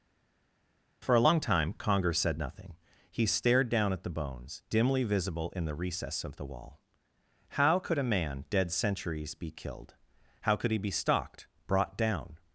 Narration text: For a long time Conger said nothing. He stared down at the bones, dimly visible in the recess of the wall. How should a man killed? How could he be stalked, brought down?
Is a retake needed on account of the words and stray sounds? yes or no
yes